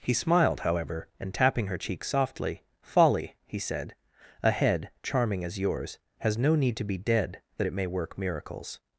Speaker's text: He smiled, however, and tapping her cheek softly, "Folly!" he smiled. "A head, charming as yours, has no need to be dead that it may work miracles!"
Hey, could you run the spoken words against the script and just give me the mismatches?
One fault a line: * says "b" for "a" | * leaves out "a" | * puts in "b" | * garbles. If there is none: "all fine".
* says "said" for "smiled"